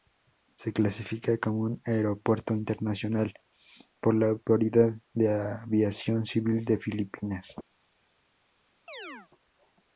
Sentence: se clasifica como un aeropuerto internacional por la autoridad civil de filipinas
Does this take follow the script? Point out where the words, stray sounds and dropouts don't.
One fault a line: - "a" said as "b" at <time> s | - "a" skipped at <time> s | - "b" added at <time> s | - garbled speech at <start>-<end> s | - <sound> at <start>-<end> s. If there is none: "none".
- "de aviación" added at 5.1 s
- chirp at 8.9-9.3 s